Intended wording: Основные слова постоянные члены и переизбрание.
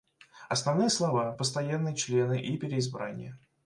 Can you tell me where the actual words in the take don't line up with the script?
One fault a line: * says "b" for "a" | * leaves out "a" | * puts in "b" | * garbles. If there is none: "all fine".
all fine